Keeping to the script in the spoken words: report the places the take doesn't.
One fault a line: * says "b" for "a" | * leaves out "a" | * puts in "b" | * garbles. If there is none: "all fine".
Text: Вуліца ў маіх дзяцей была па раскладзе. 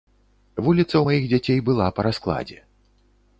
all fine